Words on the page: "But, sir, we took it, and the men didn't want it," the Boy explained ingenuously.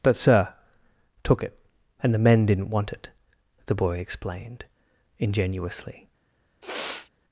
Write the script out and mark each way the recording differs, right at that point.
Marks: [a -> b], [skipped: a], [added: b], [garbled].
"But, sir, [skipped: we] took it, and the men didn't want it," the Boy explained ingenuously.